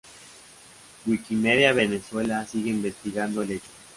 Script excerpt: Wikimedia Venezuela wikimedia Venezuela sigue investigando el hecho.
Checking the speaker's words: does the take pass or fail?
fail